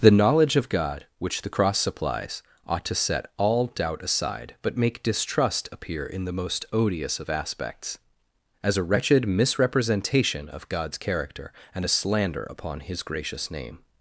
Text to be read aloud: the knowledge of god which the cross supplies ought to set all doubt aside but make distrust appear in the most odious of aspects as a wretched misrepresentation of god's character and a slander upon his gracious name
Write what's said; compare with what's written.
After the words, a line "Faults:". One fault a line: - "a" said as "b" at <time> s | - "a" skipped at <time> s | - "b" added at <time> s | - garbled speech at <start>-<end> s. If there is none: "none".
the knowledge of god which the cross supplies ought to set all doubt aside but make distrust appear in the most odious of aspects as a wretched misrepresentation of god's character and a slander upon his gracious name
Faults:
none